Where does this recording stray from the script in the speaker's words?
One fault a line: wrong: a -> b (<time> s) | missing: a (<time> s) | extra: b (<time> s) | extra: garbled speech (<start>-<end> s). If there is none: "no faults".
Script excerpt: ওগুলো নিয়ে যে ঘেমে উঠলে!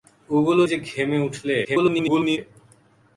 missing: নিয়ে (0.6 s)
extra: garbled speech (1.6-2.4 s)